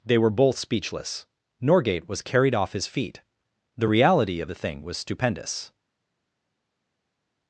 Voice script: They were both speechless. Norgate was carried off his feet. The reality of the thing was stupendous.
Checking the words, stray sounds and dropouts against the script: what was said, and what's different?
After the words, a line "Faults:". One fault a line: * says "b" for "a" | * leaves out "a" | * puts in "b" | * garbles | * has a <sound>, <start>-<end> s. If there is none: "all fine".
They were both speechless. Norgate was carried off his feet. The reality of the thing was stupendous.
Faults:
all fine